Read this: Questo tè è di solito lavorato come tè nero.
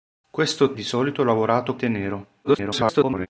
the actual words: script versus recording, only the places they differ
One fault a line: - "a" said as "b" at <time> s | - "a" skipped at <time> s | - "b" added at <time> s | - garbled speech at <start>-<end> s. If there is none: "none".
- "tè è" skipped at 0.7 s
- "come" skipped at 1.8 s
- garbled speech at 2.4-3.3 s